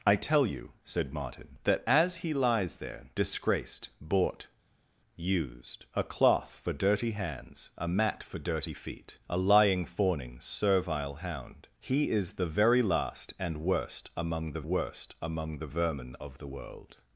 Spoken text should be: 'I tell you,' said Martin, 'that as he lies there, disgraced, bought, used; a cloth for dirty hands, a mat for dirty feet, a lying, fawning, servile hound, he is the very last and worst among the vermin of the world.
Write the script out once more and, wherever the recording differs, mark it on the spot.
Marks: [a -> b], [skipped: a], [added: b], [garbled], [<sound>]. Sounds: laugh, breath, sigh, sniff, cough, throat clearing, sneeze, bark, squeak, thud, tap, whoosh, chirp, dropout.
'I tell you,' said Martin, 'that as he lies there, disgraced, bought, used; a cloth for dirty hands, a mat for dirty feet, a lying, fawning, servile hound, he is the very last and worst among the [added: worst among the] vermin of the world.